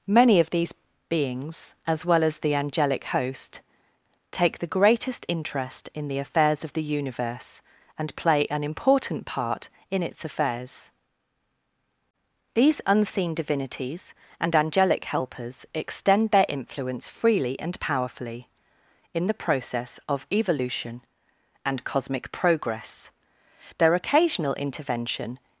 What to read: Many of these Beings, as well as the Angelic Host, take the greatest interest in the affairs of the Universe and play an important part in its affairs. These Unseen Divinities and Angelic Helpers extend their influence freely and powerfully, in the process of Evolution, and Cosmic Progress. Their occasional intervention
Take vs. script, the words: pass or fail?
pass